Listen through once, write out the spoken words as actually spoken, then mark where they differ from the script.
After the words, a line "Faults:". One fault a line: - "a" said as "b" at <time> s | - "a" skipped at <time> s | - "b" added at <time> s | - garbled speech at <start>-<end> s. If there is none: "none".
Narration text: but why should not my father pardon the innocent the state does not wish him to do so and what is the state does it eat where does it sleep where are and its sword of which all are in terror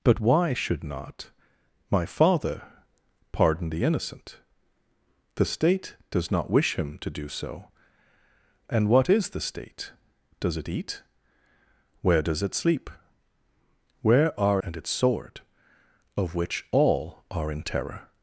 but why should not my father pardon the innocent the state does not wish him to do so and what is the state does it eat where does it sleep where are and its sword of which all are in terror
Faults:
none